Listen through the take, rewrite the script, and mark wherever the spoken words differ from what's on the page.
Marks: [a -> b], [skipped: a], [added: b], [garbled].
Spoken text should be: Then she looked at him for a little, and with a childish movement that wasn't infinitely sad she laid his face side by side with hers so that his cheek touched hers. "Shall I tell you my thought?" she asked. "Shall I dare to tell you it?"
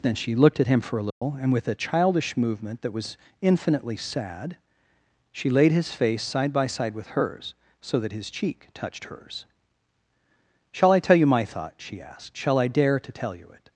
Then she looked at him for a little, and with a childish movement that [wasn't -> was] infinitely sad she laid his face side by side with hers so that his cheek touched hers. "Shall I tell you my thought?" she asked. "Shall I dare to tell you it?"